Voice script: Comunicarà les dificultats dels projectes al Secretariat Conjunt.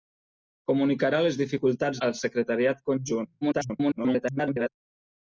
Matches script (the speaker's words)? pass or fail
fail